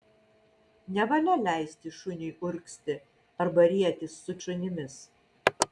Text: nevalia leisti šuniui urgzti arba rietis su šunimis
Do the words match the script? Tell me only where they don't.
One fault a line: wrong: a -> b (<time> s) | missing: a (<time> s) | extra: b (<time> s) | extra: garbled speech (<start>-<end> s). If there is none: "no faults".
no faults